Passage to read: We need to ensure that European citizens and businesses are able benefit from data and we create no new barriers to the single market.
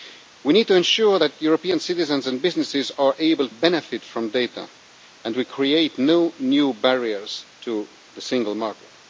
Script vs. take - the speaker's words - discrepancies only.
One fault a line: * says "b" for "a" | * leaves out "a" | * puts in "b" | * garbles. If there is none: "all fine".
all fine